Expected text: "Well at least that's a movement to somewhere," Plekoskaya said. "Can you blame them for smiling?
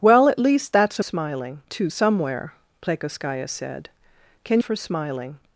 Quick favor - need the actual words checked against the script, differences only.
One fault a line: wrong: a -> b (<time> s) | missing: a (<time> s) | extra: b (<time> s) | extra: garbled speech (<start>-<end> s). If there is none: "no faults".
wrong: movement -> smiling (1.0 s)
missing: you blame them (4.6 s)